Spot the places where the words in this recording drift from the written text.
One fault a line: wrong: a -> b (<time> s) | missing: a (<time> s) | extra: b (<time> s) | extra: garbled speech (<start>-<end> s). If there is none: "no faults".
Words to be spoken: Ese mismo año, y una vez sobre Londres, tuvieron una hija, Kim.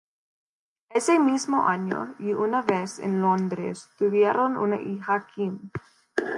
wrong: sobre -> en (3.0 s)